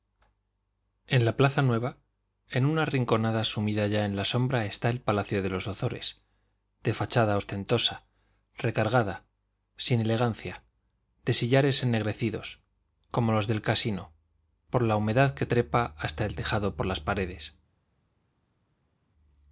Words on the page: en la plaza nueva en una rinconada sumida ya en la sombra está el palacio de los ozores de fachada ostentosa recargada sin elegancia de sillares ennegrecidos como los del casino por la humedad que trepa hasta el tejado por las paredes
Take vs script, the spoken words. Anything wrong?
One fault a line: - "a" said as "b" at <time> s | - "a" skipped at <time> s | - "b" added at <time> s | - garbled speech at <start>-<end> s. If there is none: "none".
none